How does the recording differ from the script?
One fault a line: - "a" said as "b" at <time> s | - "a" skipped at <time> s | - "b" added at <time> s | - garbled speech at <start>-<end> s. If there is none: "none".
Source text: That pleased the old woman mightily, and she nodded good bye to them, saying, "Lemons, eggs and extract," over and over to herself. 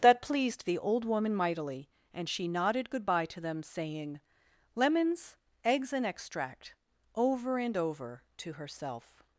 none